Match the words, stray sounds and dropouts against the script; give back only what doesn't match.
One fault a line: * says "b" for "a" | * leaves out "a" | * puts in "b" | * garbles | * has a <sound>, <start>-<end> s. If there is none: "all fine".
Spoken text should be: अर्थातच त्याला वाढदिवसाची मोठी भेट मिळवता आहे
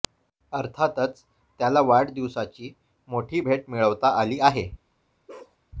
* puts in "आली"
* has a bark, 5.3-5.6 s